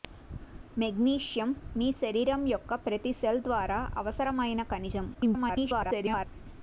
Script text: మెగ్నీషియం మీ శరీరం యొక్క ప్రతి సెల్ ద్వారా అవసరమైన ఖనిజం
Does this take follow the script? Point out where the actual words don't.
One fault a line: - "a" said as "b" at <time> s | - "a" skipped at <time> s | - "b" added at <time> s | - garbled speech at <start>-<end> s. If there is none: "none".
- garbled speech at 5.1-6.3 s